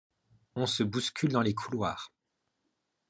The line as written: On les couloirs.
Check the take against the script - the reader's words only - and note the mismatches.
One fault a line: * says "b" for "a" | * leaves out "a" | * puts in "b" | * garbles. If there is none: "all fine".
* puts in "se bouscule dans"